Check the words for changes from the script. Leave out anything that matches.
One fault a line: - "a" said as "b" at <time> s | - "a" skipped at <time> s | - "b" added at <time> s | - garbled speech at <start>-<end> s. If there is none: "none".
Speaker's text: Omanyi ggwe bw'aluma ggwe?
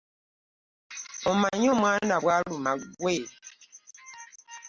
- "ggwe" said as "omwana" at 1.7 s